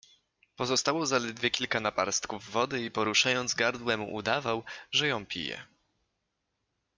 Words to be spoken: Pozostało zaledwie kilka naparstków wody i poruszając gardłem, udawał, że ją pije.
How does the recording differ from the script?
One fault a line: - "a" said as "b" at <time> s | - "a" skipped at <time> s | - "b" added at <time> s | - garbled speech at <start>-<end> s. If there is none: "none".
none